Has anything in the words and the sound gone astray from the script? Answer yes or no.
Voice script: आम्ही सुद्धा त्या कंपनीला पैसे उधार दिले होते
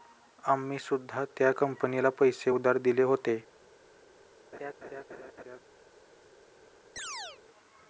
yes